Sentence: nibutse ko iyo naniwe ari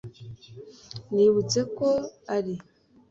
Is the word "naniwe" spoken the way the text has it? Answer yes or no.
no